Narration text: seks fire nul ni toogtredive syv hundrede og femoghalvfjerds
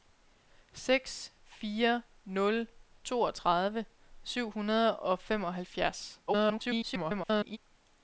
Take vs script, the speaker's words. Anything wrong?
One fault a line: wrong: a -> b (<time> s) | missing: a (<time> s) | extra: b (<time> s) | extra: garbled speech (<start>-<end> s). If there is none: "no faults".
missing: ni (2.7 s)
extra: garbled speech (6.3-7.6 s)